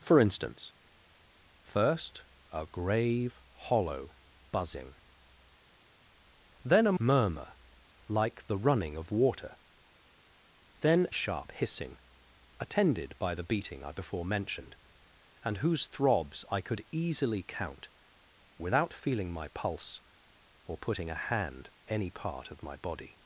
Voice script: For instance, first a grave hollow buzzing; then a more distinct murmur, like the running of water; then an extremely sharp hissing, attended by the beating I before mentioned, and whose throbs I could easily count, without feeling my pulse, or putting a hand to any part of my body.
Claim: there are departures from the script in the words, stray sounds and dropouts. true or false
true